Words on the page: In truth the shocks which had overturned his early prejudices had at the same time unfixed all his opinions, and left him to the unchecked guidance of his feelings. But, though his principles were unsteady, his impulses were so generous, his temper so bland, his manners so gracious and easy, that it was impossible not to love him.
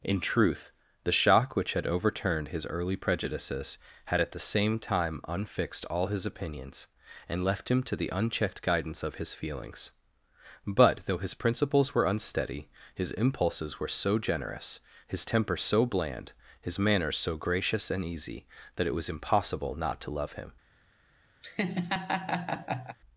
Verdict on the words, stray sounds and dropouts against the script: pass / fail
fail